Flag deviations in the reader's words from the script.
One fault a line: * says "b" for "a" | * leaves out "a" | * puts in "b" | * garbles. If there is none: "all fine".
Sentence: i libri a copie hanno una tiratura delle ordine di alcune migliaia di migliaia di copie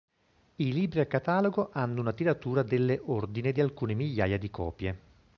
* says "catalogo" for "copie"
* leaves out "migliaia di"